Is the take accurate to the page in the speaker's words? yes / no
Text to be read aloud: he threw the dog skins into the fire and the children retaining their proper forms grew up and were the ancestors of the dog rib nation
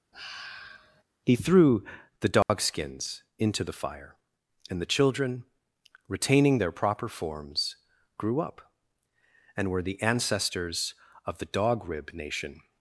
yes